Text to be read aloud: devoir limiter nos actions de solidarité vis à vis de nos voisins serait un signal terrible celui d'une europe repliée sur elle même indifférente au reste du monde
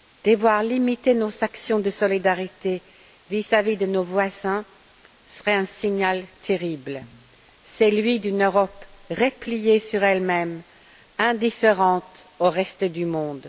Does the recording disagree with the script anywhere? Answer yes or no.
no